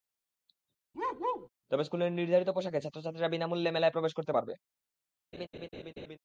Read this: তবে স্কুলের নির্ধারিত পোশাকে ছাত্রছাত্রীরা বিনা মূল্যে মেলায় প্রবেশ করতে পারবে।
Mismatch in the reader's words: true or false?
false